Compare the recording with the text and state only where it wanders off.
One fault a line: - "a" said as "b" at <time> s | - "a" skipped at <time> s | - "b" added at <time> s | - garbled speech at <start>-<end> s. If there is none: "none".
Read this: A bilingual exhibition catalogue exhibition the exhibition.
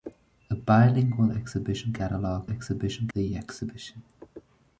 none